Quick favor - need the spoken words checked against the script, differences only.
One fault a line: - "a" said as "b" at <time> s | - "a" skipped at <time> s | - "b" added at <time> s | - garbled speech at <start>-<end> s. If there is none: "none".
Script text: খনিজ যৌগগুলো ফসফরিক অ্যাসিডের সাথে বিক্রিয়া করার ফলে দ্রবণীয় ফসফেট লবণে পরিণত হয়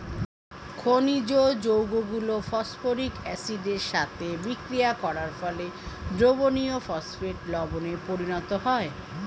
none